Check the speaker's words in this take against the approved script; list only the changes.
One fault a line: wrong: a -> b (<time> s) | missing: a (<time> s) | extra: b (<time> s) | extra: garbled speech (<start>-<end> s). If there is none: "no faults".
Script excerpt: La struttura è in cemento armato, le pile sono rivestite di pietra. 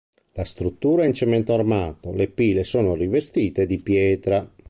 no faults